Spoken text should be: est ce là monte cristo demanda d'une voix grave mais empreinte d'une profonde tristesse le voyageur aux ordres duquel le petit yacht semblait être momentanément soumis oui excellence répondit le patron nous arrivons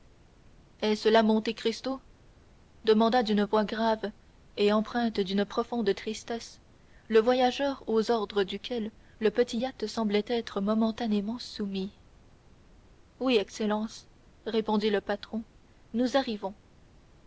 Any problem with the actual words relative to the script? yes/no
yes